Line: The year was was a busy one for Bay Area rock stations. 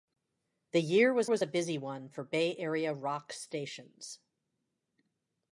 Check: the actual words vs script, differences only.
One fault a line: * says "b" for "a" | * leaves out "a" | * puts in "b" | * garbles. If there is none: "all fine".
all fine